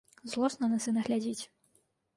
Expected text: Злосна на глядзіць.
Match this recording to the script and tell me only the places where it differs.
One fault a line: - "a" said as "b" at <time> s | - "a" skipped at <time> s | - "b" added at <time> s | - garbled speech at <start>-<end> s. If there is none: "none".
- "сына" added at 0.9 s